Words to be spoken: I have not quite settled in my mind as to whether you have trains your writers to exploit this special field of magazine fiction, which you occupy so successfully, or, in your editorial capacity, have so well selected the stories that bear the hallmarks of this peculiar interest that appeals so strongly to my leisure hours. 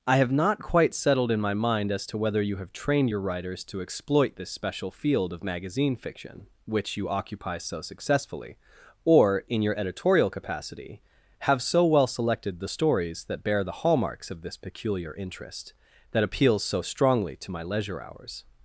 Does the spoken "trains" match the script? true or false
false